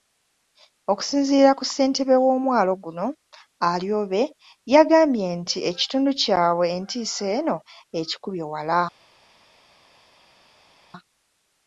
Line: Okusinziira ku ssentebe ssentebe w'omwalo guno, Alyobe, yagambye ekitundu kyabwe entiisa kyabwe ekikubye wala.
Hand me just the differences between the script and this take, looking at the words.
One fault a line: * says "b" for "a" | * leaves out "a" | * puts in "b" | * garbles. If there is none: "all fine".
* leaves out "ssentebe"
* puts in "nti"
* says "eno" for "kyabwe"